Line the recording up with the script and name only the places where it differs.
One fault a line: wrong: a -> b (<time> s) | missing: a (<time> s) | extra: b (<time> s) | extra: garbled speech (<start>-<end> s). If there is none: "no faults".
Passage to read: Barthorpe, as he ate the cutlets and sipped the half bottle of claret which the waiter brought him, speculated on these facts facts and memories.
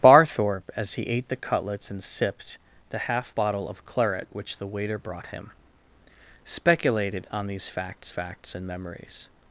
no faults